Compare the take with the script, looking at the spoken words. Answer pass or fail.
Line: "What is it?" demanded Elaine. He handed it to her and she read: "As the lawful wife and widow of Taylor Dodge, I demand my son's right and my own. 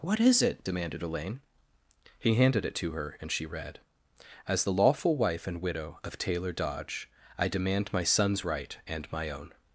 pass